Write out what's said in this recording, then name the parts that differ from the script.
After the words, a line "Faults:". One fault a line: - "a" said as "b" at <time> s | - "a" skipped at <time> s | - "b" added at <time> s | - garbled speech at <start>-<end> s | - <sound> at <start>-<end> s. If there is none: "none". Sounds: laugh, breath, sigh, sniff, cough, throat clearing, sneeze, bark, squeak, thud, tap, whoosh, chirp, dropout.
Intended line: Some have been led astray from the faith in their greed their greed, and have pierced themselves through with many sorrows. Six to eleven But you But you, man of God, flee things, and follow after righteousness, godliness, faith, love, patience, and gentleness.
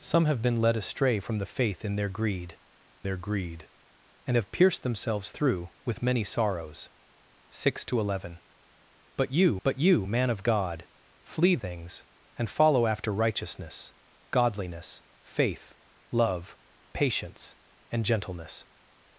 Some have been led astray from the faith in their greed their greed, and have pierced themselves through with many sorrows. Six to eleven But you But you, man of God, flee things, and follow after righteousness, godliness, faith, love, patience, and gentleness.
Faults:
none